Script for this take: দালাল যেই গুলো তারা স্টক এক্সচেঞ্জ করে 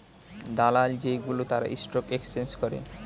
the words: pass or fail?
pass